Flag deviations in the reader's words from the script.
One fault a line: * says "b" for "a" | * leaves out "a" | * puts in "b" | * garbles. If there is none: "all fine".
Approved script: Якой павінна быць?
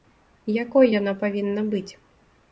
* puts in "яна"